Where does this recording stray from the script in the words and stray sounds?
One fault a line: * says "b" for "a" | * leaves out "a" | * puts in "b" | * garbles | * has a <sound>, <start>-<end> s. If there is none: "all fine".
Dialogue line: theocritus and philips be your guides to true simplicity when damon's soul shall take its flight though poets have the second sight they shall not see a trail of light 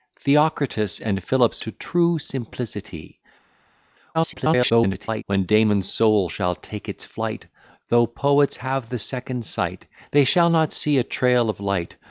* leaves out "be your guides"
* garbles